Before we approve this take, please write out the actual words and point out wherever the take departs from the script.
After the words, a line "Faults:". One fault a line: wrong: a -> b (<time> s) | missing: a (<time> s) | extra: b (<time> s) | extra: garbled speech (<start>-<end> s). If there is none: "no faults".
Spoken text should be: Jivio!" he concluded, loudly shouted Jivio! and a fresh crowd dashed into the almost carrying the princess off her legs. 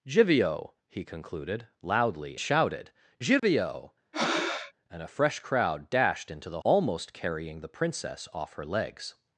Jivio!" he concluded, loudly shouted Jivio! and a fresh crowd dashed into the almost carrying the princess off her legs.
Faults:
no faults